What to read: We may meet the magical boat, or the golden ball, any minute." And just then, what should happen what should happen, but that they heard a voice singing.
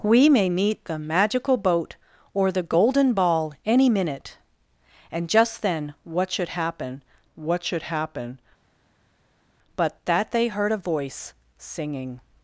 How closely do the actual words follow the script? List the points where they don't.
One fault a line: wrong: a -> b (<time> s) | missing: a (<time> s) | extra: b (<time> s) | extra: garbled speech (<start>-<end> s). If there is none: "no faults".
no faults